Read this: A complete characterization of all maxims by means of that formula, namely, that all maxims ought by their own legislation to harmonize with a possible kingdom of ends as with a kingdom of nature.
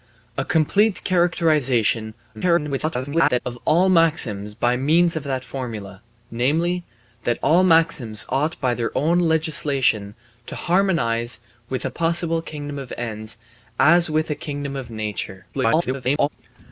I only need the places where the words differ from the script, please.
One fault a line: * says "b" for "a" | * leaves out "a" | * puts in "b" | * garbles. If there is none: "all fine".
* garbles
* garbles